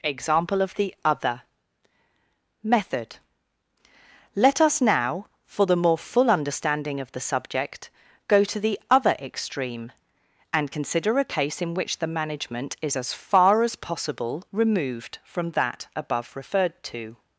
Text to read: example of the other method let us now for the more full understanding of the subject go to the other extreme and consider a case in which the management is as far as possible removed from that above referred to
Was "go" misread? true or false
false